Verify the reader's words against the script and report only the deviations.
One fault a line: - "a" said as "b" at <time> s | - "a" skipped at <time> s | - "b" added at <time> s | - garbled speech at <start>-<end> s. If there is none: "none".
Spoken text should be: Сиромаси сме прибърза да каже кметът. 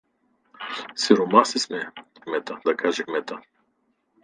- "прибърза" said as "кметът" at 2.2 s